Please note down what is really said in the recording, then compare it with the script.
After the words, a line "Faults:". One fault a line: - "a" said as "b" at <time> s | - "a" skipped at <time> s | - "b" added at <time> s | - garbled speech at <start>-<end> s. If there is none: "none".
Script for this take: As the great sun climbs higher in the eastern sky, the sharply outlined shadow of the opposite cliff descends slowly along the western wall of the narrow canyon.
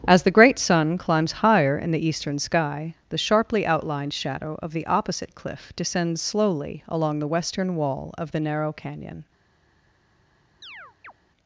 As the great sun climbs higher in the eastern sky, the sharply outlined shadow of the opposite cliff descends slowly along the western wall of the narrow canyon.
Faults:
none